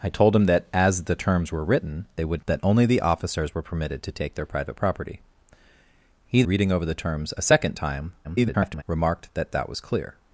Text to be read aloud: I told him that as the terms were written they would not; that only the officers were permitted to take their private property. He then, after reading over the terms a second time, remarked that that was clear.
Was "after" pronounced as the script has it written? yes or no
no